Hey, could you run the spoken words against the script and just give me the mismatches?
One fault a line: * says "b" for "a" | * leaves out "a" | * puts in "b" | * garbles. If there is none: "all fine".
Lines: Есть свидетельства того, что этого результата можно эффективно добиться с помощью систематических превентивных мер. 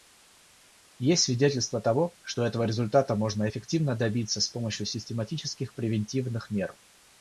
all fine